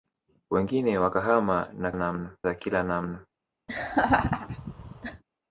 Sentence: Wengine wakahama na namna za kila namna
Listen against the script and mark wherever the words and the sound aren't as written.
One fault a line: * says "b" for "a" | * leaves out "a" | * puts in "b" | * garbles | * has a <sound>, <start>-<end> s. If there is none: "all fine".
* has a laugh, 3.7-5.2 s